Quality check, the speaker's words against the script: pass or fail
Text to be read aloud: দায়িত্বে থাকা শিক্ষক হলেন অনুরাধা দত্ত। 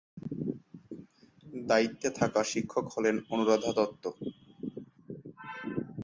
pass